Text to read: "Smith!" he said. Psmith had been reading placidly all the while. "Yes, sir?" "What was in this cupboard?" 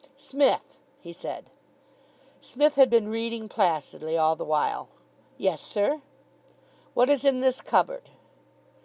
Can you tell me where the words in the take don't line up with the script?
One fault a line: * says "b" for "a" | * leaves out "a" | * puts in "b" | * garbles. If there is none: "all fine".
* says "is" for "was"